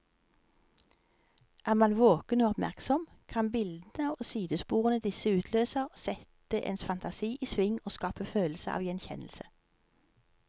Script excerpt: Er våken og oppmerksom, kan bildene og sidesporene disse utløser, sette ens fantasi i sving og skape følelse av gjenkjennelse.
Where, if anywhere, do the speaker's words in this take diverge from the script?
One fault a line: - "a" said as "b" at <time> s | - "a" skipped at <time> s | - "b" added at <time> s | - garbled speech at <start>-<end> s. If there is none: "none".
- "man" added at 1.7 s